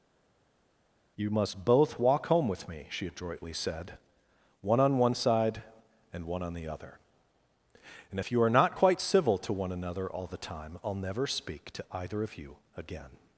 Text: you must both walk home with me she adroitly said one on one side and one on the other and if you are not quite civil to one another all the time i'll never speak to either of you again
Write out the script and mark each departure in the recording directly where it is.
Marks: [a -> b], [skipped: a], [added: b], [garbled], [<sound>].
you must both walk home with me she adroitly said one on one side and one on the other and if you are not quite civil to one another all the time i'll never speak to either of you again